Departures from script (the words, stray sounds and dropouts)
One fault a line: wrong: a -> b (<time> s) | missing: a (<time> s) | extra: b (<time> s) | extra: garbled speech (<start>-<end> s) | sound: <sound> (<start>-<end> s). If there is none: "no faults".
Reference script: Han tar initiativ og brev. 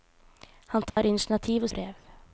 sound: dropout (0.9-1.0 s)